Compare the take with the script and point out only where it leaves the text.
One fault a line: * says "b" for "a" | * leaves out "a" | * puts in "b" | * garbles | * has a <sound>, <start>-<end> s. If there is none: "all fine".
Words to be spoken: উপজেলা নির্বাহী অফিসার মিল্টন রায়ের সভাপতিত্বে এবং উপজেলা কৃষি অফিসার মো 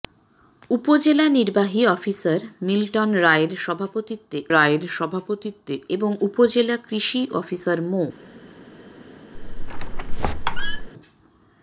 * puts in "রায়ের সভাপতিত্বে"
* has a squeak, 9.3-10.9 s